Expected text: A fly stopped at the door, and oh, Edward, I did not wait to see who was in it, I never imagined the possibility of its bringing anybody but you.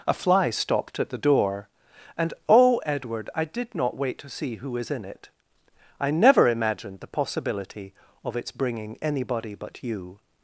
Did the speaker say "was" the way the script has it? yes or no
no